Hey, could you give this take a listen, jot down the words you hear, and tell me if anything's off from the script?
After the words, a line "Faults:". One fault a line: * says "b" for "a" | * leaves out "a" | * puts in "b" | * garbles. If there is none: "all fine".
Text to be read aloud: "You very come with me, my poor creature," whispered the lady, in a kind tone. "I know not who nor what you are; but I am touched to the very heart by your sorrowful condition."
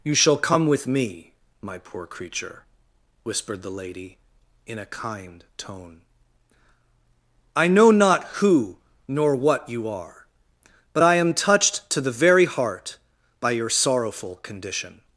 "You shall come with me, my poor creature," whispered the lady, in a kind tone. "I know not who nor what you are; but I am touched to the very heart by your sorrowful condition."
Faults:
* says "shall" for "very"